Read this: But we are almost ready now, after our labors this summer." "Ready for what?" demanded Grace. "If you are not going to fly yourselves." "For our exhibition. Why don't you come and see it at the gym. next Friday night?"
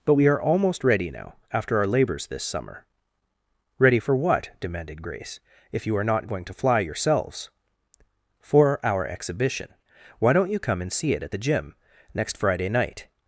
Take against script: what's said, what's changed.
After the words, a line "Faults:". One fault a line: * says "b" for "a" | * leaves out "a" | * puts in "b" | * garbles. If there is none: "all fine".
But we are almost ready now, after our labors this summer." "Ready for what?" demanded Grace. "If you are not going to fly yourselves." "For our exhibition. Why don't you come and see it at the gym. next Friday night?"
Faults:
all fine